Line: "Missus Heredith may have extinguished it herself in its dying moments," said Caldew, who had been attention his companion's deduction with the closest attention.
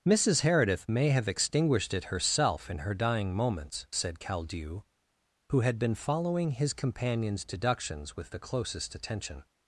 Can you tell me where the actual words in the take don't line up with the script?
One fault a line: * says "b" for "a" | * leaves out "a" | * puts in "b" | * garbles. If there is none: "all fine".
* says "her" for "its"
* says "following" for "attention"
* says "deductions" for "deduction"